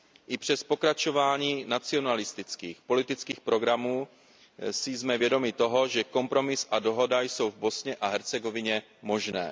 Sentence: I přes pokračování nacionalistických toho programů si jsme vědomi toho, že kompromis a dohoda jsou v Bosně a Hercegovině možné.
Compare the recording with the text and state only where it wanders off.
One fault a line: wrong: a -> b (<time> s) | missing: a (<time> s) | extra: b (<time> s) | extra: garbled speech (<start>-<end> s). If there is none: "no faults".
wrong: toho -> politických (2.8 s)